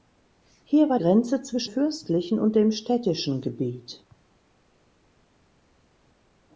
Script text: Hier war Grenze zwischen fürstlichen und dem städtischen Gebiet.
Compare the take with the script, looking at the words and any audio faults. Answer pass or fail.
pass